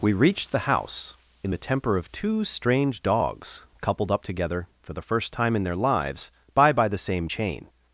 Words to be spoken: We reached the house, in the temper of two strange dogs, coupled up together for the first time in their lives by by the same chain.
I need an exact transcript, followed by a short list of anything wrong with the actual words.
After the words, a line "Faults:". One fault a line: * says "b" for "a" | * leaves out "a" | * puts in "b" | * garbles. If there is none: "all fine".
We reached the house, in the temper of two strange dogs, coupled up together for the first time in their lives by by the same chain.
Faults:
all fine